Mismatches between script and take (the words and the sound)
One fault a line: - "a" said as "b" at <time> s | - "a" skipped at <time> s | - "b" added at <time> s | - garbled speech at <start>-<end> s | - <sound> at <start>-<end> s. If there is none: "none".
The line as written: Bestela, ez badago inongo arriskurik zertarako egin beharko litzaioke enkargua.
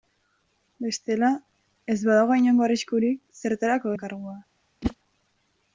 - "egin beharko litzaioke" skipped at 3.9 s
- whoosh at 4.8-5.0 s